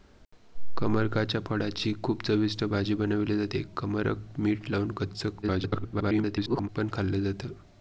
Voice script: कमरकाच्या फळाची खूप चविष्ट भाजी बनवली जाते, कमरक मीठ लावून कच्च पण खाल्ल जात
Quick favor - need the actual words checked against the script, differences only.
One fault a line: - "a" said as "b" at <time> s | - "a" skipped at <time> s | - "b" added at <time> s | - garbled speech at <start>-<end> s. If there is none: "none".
- garbled speech at 5.4-6.7 s